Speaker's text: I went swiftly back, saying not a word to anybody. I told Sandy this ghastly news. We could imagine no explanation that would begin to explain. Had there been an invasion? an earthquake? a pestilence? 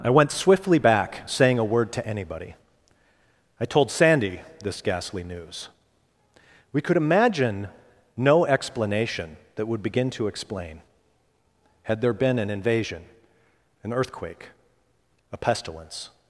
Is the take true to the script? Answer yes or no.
no